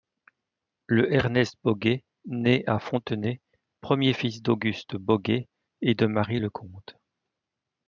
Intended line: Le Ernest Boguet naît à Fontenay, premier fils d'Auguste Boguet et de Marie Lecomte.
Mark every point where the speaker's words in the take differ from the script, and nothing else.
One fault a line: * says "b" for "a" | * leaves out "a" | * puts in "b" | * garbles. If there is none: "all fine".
all fine